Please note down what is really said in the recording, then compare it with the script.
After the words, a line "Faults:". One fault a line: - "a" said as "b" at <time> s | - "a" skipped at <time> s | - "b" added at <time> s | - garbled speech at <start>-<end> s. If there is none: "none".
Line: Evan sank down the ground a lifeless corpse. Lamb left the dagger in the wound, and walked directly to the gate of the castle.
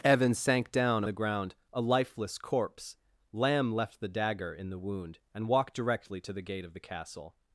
Evan sank down the ground a lifeless corpse. Lamb left the dagger in the wound, and walked directly to the gate of the castle.
Faults:
none